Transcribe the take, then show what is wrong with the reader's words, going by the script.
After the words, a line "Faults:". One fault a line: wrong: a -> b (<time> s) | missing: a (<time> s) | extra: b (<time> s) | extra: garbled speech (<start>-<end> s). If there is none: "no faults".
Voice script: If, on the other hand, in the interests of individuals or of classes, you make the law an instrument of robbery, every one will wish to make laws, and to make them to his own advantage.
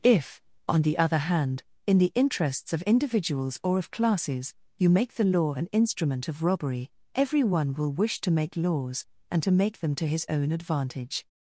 If, on the other hand, in the interests of individuals or of classes, you make the law an instrument of robbery, every one will wish to make laws, and to make them to his own advantage.
Faults:
no faults